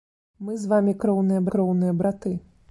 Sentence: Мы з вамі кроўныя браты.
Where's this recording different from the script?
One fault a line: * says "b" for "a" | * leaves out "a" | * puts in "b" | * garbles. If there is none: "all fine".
* puts in "кроўныя"